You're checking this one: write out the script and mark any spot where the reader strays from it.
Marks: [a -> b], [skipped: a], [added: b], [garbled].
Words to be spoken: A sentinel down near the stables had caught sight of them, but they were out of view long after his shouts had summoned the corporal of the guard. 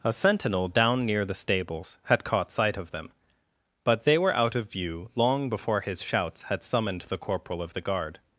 A sentinel down near the stables had caught sight of them, but they were out of view long [after -> before] his shouts had summoned the corporal of the guard.